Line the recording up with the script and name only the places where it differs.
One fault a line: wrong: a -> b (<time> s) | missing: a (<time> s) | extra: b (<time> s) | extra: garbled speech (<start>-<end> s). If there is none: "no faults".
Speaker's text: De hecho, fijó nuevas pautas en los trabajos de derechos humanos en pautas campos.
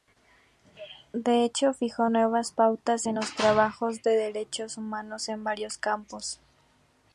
wrong: pautas -> varios (5.4 s)